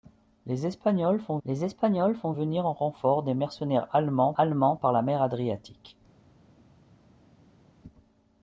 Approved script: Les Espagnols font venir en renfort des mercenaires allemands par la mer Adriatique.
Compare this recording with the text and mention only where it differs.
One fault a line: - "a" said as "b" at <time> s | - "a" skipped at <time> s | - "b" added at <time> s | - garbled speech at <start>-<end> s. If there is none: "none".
- "les Espagnols font" added at 1.5 s
- "allemands" added at 4.4 s